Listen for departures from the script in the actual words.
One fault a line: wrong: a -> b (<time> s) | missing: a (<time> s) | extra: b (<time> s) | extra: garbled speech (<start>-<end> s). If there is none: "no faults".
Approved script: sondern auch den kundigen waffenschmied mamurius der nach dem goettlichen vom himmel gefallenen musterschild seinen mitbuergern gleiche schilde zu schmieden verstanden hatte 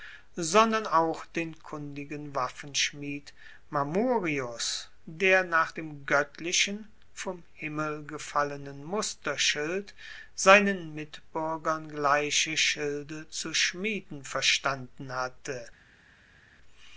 no faults